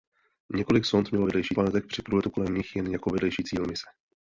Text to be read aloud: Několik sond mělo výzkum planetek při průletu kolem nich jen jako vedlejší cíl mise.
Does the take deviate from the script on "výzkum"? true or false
true